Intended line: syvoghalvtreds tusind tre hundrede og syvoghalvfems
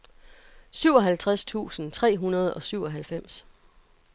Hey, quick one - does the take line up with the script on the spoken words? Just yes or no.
yes